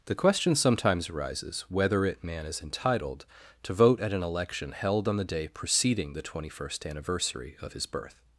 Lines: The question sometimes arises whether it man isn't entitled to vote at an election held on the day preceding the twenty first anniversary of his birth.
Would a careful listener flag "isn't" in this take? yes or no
yes